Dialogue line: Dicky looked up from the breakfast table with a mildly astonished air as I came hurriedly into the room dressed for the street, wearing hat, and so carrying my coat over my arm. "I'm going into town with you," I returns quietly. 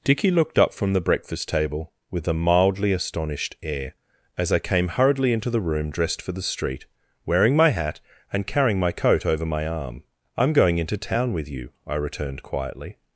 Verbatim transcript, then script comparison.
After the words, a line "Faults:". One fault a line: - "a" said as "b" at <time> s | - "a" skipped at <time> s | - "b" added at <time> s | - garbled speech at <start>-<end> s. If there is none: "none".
Dicky looked up from the breakfast table with a mildly astonished air as I came hurriedly into the room dressed for the street, wearing my hat, and carrying my coat over my arm. "I'm going into town with you," I returned quietly.
Faults:
- "my" added at 7.5 s
- "so" skipped at 8.5 s
- "returns" said as "returned" at 12.0 s